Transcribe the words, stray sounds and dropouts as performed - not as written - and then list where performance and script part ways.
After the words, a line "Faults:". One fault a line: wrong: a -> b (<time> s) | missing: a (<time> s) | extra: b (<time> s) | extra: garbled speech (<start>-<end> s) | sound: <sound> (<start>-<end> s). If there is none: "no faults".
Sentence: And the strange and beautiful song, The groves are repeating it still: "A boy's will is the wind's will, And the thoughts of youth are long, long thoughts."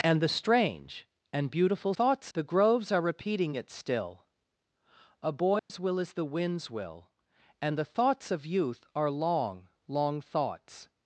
And the strange and beautiful thoughts, The groves are repeating it still: "A boy's will is the wind's will, And the thoughts of youth are long, long thoughts."
Faults:
wrong: song -> thoughts (1.9 s)
sound: dropout (5.6-5.7 s)